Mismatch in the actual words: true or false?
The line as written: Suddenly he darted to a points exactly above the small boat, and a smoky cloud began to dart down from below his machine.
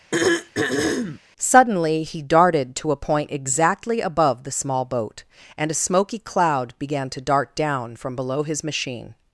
true